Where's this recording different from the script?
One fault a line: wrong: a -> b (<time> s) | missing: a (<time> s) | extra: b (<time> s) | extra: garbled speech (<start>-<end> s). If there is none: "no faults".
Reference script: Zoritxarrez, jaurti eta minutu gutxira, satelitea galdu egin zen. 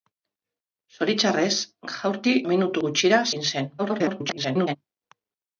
missing: eta (2.3 s)
missing: satelitea galdu (3.2 s)
extra: garbled speech (3.8-4.8 s)